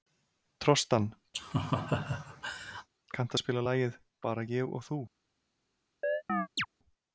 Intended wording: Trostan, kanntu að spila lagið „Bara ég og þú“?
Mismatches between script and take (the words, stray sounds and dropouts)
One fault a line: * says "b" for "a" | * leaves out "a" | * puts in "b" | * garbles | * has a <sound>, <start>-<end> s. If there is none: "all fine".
* has a laugh, 1.3-2.9 s
* has a chirp, 6.0-6.7 s